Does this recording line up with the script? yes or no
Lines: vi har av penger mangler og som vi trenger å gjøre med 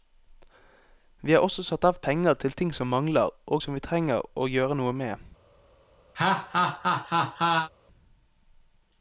no